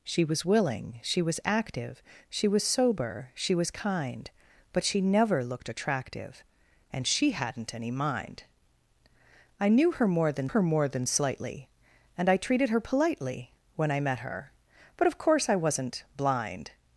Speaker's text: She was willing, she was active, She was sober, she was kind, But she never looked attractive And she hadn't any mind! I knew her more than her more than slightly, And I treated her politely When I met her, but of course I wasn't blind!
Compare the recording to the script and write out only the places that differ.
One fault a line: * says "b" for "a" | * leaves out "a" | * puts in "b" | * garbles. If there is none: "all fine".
all fine